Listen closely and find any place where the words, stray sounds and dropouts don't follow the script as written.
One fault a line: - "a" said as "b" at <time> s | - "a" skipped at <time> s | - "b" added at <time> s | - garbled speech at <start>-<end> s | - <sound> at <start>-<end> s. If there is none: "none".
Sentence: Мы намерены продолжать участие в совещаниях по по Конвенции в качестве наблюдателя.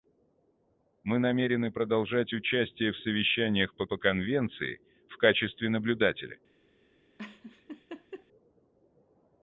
- laugh at 7.2-8.3 s